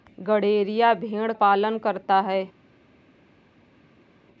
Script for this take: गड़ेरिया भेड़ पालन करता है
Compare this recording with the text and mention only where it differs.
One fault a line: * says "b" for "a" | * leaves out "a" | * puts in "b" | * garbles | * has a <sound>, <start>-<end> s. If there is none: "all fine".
all fine